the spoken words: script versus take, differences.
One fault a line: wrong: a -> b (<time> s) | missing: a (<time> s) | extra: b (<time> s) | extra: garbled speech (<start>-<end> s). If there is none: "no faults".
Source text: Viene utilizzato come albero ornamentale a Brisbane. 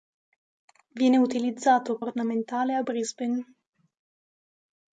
missing: come albero (2.0 s)